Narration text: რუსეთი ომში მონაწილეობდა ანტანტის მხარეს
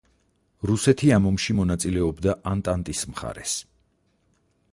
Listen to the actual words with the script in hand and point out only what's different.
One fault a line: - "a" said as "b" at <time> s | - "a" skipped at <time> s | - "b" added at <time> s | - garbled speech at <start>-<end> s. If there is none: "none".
- "ამ" added at 1.2 s